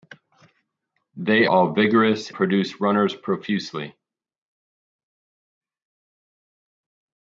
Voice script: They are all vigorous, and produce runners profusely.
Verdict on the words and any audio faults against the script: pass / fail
fail